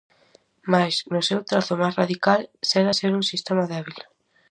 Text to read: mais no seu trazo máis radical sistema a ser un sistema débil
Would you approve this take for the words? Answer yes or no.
no